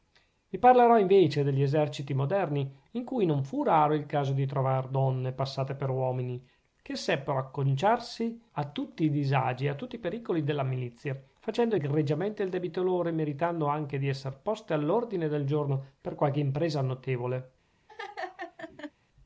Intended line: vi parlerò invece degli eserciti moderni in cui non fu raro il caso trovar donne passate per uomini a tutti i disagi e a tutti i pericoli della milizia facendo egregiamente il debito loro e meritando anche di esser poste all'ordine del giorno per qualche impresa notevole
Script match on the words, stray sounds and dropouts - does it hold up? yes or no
no